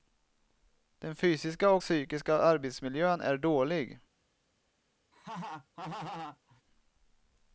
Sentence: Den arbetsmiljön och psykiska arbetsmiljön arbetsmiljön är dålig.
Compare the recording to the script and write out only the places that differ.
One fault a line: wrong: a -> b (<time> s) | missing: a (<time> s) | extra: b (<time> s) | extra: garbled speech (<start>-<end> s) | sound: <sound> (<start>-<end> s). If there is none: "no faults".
wrong: arbetsmiljön -> fysiska (1.1 s)
missing: arbetsmiljön (3.2 s)
sound: laugh (5.1-6.6 s)